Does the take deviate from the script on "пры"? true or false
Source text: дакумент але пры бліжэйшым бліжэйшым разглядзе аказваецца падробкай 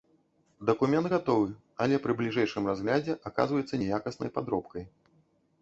false